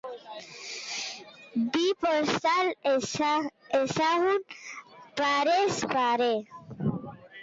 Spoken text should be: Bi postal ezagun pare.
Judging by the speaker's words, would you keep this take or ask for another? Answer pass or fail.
fail